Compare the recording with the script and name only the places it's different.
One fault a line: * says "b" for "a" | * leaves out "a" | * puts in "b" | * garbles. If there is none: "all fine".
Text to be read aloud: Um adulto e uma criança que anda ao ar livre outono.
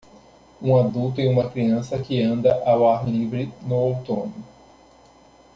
* puts in "no"